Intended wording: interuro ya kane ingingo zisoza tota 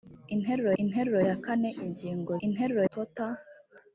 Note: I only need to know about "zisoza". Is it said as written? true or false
false